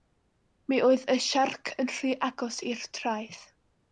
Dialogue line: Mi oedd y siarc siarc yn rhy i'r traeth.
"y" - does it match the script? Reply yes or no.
yes